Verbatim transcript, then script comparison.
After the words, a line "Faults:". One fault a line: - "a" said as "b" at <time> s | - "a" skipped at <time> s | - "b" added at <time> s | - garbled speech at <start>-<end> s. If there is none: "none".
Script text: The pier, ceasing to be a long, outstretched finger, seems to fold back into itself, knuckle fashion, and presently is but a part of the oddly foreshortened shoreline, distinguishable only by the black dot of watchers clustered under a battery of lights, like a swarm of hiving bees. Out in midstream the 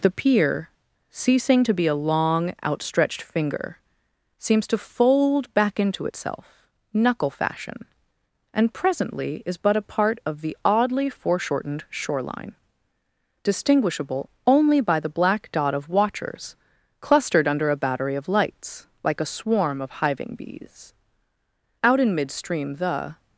The pier, ceasing to be a long, outstretched finger, seems to fold back into itself, knuckle fashion, and presently is but a part of the oddly foreshortened shoreline, distinguishable only by the black dot of watchers clustered under a battery of lights, like a swarm of hiving bees. Out in midstream the
Faults:
none